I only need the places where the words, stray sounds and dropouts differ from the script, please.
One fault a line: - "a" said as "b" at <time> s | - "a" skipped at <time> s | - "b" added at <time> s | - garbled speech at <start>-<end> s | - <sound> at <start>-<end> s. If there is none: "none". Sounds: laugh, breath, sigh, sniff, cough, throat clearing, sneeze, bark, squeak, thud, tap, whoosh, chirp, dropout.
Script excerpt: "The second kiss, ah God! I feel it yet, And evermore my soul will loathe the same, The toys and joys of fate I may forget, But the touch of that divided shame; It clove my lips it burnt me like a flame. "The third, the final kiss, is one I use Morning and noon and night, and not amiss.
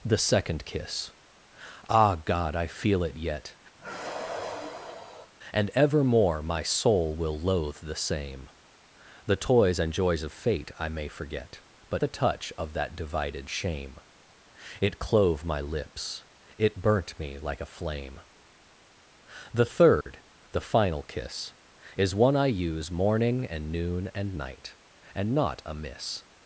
- sigh at 3.8-5.3 s
- dropout at 20.0-20.1 s